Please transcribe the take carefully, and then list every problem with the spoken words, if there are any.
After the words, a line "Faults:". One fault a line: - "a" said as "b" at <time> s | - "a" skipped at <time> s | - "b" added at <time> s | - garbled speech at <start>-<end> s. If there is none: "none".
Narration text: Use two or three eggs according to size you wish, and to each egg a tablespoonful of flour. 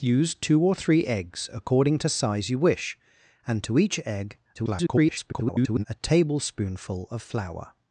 Use two or three eggs according to size you wish, and to each egg [garbled] a tablespoonful of flour.
Faults:
- garbled speech at 4.6-5.8 s